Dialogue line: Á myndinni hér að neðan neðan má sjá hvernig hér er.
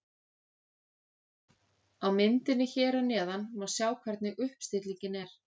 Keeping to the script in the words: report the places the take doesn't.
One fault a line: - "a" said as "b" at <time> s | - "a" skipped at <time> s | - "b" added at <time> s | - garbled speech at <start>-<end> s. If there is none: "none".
- "neðan" skipped at 3.5 s
- "hér" said as "uppstillingin" at 4.5 s